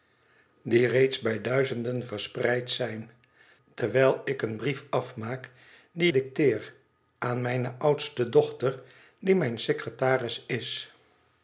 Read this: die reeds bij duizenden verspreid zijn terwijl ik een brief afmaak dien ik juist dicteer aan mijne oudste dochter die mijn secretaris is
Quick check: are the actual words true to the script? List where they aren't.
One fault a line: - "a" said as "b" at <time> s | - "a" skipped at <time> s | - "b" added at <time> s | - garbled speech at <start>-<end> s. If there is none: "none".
- "ik juist" skipped at 6.1 s